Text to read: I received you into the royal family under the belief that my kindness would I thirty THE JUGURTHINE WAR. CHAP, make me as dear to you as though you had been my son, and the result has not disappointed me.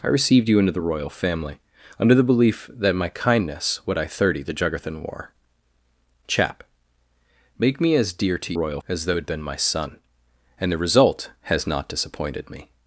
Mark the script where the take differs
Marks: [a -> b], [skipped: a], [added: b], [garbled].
I received you into the royal family under the belief that my kindness would I thirty THE JUGURTHINE WAR. CHAP, make me as dear to [you -> royal] as though [skipped: you] had been my son, and the result has not disappointed me.